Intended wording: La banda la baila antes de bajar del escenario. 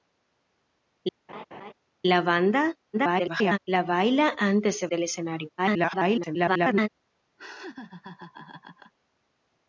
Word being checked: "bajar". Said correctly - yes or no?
no